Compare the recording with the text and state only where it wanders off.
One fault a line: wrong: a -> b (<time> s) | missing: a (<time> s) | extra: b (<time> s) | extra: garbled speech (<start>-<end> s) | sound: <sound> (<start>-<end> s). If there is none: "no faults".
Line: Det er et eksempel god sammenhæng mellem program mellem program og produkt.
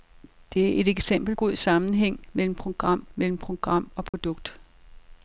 sound: dropout (4.1-4.1 s)